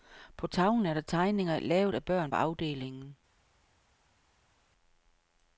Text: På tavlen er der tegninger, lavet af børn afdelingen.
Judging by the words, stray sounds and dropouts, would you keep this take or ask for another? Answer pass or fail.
pass